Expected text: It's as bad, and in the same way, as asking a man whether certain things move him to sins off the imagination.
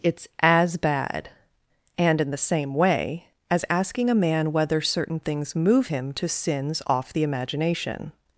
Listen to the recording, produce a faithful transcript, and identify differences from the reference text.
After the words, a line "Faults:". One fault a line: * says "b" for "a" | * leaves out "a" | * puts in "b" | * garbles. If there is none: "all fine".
It's as bad, and in the same way, as asking a man whether certain things move him to sins off the imagination.
Faults:
all fine